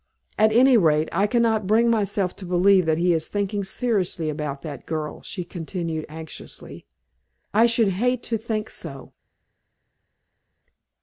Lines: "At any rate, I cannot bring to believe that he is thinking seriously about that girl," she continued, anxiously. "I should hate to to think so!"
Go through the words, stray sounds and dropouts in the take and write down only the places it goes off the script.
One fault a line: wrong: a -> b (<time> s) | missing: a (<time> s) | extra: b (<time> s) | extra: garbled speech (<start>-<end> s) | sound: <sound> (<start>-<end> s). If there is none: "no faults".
extra: myself (1.9 s)
missing: to (8.4 s)